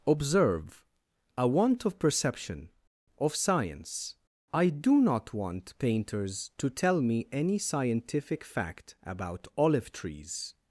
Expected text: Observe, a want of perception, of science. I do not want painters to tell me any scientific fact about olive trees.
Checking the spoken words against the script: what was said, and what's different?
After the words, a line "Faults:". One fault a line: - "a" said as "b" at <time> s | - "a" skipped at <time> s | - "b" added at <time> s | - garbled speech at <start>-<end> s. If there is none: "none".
Observe, a want of perception, of science. I do not want painters to tell me any scientific fact about olive trees.
Faults:
none